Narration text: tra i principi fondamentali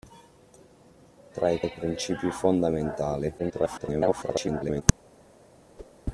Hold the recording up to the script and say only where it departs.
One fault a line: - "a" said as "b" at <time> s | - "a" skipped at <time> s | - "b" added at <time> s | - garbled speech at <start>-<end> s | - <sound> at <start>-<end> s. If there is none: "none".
- "i" added at 1.6 s
- garbled speech at 3.4-4.8 s
- whoosh at 5.8-5.9 s